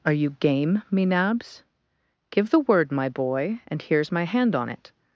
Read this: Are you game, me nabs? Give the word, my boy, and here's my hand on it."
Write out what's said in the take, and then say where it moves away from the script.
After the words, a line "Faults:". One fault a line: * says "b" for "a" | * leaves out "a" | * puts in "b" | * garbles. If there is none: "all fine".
Are you game, me nabs? Give the word, my boy, and here's my hand on it."
Faults:
all fine